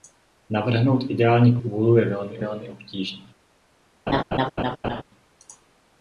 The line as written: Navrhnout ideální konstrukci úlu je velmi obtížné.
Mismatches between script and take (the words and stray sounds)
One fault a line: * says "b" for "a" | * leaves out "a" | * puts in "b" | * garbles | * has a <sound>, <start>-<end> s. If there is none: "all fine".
* leaves out "konstrukci"
* puts in "velmi"
* has a laugh, 4.1-5.0 s